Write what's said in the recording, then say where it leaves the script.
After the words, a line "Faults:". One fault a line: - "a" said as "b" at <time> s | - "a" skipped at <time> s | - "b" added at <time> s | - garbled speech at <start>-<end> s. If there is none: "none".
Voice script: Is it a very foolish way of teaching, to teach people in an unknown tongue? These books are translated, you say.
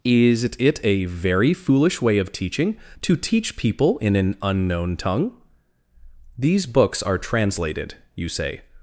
Is it a very foolish way of teaching, to teach people in an unknown tongue? These books are translated, you say.
Faults:
none